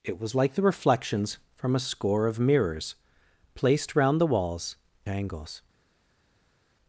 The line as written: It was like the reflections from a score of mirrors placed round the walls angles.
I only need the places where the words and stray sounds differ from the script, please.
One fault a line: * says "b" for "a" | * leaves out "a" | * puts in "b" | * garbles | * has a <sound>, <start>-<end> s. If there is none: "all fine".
all fine